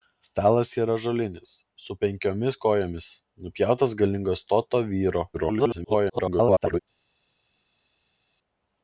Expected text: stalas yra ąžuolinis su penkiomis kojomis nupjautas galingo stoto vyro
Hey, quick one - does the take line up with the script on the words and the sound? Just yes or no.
no